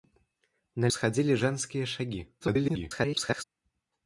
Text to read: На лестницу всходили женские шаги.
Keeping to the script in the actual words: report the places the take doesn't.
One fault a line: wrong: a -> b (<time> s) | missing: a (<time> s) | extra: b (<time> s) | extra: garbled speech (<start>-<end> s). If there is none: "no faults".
missing: лестницу (0.9 s)
extra: garbled speech (2.4-3.4 s)